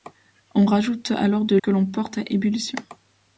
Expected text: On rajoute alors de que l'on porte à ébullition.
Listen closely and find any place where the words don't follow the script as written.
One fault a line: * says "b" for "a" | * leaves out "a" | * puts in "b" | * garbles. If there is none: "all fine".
all fine